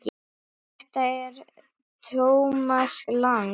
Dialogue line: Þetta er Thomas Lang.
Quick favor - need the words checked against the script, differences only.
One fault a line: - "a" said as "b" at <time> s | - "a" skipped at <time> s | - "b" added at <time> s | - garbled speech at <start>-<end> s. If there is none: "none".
none